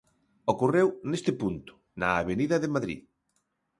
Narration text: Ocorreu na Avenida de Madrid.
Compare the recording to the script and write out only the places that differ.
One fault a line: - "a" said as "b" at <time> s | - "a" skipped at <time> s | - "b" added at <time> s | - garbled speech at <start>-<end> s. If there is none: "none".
- "neste punto" added at 1.1 s